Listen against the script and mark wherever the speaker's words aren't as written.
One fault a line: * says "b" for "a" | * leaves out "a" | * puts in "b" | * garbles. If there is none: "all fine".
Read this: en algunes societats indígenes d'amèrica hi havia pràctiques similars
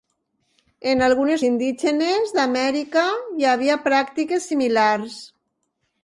* leaves out "societats"